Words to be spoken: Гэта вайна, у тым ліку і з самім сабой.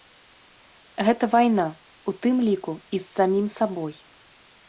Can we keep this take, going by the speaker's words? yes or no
yes